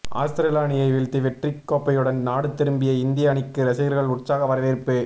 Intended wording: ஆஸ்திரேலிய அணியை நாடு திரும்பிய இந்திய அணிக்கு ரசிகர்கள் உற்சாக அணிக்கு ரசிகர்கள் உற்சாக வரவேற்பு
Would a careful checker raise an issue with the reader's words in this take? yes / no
yes